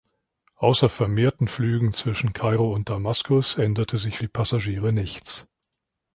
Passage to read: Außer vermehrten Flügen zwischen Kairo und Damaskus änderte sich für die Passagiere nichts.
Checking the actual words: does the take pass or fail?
fail